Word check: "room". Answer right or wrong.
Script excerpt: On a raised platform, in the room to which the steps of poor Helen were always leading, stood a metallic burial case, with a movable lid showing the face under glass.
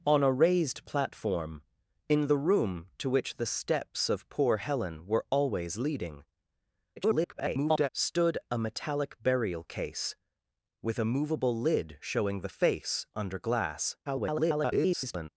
right